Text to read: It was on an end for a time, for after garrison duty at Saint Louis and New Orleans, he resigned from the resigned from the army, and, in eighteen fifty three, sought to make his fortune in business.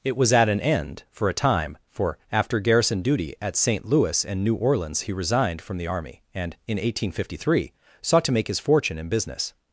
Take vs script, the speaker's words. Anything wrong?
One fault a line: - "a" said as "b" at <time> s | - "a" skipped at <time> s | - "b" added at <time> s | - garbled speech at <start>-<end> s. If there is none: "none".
- "on" said as "at" at 0.3 s
- "resigned from the" skipped at 5.9 s